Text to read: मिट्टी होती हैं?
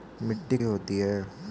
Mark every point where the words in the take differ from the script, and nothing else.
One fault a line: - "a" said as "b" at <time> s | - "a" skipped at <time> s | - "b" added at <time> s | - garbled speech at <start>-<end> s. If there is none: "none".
none